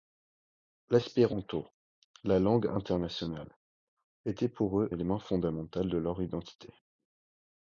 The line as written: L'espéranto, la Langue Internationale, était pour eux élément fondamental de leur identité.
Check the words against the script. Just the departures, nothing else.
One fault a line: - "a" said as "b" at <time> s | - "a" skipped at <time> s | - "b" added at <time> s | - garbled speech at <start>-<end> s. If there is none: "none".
none